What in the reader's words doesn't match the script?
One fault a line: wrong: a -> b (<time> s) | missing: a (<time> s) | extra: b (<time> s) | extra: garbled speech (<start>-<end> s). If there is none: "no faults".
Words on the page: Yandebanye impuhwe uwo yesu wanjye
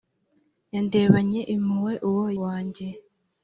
missing: yesu (2.2 s)